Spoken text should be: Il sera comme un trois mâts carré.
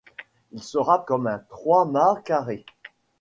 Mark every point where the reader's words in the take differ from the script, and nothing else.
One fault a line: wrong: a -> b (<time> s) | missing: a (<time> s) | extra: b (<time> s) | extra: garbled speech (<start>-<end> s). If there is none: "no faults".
no faults